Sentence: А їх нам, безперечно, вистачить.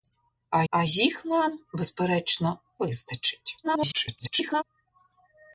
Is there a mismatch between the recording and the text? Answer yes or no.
yes